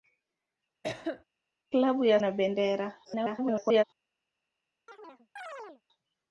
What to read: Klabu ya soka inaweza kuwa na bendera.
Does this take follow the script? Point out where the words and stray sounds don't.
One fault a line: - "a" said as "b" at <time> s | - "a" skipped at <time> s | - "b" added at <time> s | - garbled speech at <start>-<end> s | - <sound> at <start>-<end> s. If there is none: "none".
- cough at 0.8-1.2 s
- "soka inaweza kuwa" skipped at 2.2 s
- garbled speech at 3.0-3.8 s
- chirp at 4.9-5.8 s